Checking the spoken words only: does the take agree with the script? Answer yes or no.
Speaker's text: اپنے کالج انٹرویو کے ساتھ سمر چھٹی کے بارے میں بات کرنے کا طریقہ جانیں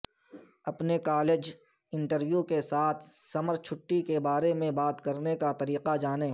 yes